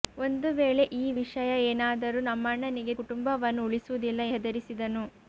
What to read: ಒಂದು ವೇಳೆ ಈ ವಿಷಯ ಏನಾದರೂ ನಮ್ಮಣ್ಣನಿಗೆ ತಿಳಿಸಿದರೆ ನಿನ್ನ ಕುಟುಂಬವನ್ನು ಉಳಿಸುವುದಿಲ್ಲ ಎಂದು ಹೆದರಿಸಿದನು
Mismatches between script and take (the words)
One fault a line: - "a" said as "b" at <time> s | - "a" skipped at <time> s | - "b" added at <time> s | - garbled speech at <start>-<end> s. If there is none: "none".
- "ತಿಳಿಸಿದರೆ ನಿನ್ನ" skipped at 3.0 s
- "ಎಂದು" skipped at 4.2 s